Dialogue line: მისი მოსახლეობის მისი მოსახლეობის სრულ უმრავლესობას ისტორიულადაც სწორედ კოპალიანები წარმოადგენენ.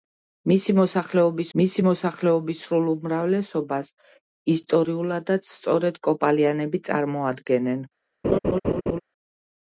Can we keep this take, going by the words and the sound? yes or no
no